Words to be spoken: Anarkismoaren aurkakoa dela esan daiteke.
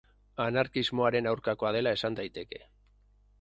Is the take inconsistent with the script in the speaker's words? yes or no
no